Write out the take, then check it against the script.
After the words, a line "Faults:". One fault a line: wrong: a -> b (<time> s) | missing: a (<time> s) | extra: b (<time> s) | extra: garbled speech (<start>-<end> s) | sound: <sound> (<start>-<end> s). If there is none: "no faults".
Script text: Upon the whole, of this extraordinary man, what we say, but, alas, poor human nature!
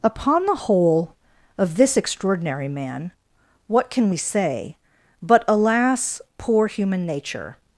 Upon the whole, of this extraordinary man, what can we say, but, alas, poor human nature!
Faults:
extra: can (3.9 s)